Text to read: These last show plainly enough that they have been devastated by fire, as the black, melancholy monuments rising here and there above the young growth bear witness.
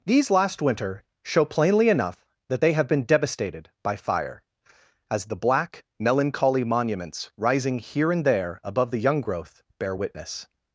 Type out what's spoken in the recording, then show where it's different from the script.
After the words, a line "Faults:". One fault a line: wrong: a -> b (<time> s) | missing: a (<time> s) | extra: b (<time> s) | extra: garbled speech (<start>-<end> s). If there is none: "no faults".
These last winter show plainly enough that they have been devastated by fire, as the black, melancholy monuments rising here and there above the young growth bear witness.
Faults:
extra: winter (0.6 s)